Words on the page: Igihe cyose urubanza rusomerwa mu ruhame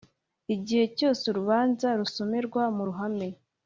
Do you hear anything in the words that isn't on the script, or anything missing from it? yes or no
no